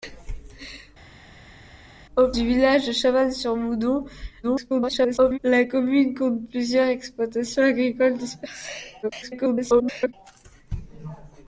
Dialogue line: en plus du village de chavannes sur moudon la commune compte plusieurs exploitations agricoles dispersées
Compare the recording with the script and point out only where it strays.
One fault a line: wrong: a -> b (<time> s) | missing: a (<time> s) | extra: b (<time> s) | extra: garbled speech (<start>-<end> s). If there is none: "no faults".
missing: plus (2.3 s)
extra: garbled speech (4.4-5.4 s)
extra: garbled speech (9.0-10.1 s)